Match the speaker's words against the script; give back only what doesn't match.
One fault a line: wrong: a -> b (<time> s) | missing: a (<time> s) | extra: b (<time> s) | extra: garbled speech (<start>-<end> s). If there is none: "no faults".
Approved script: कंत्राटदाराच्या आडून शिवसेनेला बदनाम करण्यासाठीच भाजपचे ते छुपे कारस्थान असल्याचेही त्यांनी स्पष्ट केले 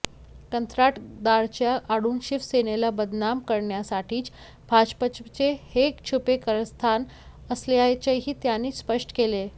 wrong: ते -> हे (5.7 s)